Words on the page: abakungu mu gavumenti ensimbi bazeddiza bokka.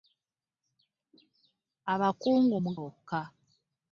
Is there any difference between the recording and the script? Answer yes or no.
yes